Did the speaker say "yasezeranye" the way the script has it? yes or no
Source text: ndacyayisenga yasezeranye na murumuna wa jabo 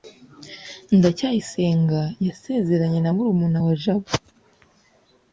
yes